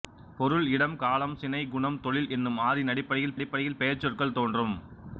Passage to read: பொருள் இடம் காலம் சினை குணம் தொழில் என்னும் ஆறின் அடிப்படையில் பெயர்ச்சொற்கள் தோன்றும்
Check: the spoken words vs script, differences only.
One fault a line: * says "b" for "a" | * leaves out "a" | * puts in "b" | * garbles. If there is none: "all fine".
* puts in "அடிப்படையில்"